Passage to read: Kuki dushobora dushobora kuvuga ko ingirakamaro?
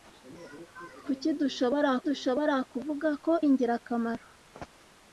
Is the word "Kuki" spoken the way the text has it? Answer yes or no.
yes